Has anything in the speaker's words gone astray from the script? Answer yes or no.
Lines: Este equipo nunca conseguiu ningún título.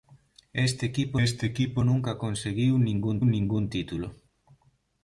yes